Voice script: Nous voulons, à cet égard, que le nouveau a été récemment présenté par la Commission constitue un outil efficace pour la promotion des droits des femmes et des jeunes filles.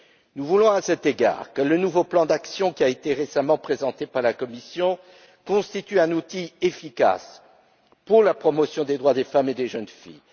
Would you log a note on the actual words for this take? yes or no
yes